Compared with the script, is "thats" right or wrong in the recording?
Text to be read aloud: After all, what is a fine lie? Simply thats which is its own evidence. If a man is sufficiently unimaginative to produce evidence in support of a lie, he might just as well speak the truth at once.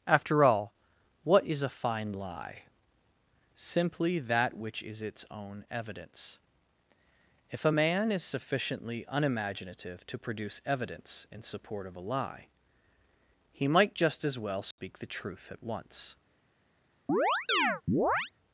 wrong